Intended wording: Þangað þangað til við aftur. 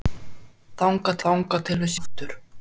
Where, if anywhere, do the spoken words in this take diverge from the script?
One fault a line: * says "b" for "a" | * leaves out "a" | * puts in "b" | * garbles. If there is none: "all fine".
all fine